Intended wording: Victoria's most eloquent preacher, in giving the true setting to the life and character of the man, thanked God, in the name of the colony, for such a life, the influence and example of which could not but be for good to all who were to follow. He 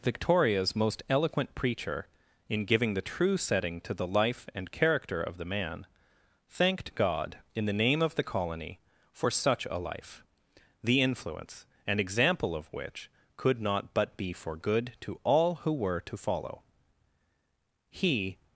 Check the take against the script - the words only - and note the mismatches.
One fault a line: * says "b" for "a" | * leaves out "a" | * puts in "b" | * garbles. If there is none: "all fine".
all fine